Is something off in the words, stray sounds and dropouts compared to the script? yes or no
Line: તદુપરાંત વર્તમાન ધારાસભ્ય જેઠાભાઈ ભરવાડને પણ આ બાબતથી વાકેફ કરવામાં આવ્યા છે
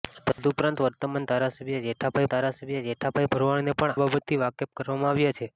yes